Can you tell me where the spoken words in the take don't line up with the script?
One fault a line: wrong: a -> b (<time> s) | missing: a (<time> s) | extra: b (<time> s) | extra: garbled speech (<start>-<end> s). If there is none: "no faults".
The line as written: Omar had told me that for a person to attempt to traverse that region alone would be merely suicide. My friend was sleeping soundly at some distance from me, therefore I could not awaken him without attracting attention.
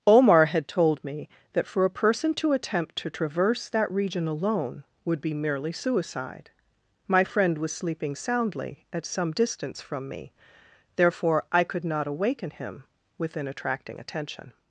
wrong: without -> within (13.2 s)